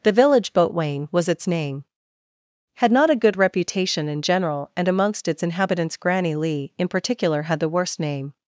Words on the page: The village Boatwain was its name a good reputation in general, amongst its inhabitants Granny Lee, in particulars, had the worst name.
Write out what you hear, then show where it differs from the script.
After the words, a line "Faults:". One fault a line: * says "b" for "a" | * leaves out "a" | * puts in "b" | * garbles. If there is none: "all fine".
The village Boatwain was its name had not a good reputation in general, and amongst its inhabitants Granny Lee, in particular, had the worst name.
Faults:
* puts in "had not"
* puts in "and"
* says "particular" for "particulars"